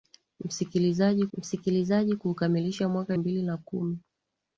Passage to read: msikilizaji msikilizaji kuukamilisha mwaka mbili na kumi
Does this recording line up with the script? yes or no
yes